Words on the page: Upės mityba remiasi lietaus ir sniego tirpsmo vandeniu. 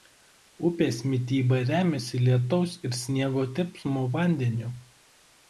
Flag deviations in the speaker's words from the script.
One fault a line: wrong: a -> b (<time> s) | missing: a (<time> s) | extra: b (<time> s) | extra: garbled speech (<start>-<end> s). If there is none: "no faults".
no faults